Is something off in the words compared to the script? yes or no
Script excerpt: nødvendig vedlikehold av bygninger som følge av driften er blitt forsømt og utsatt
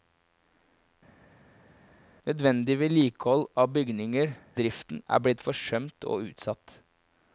yes